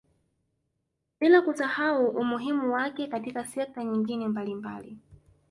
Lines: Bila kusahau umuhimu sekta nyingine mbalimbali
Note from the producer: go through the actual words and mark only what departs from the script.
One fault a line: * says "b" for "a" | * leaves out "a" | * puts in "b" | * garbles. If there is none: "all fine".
* puts in "wake katika"